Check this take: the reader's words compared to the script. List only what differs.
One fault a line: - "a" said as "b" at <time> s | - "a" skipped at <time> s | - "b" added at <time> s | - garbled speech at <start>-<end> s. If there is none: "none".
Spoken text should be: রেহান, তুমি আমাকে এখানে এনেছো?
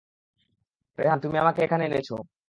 none